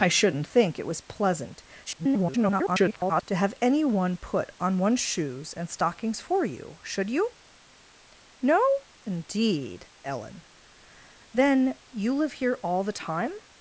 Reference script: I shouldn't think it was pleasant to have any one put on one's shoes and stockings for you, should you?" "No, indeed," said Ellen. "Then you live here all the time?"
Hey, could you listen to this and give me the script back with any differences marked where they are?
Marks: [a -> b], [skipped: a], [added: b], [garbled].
I shouldn't think it was pleasant [garbled] to have any one put on one's shoes and stockings for you, should you?" "No, indeed," [skipped: said] Ellen. "Then you live here all the time?"